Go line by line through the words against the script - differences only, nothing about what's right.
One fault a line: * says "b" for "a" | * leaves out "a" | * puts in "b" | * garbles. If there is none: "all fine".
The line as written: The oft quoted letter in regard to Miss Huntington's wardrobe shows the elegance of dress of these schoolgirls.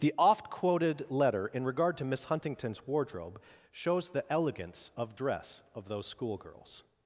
* says "those" for "these"